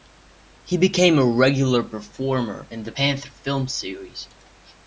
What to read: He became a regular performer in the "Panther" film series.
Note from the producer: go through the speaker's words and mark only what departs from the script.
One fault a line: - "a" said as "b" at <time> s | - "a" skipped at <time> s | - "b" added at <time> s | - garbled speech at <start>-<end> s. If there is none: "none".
none